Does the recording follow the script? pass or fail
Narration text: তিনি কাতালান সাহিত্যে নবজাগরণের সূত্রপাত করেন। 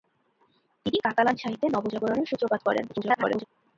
fail